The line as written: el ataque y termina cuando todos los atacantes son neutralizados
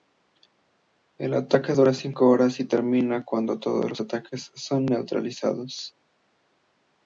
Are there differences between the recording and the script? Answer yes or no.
yes